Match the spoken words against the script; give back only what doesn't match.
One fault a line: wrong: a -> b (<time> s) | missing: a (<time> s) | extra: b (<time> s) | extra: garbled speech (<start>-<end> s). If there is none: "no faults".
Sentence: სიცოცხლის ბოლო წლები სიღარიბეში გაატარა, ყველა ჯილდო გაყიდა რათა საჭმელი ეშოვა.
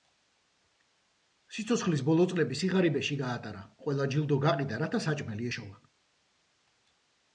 no faults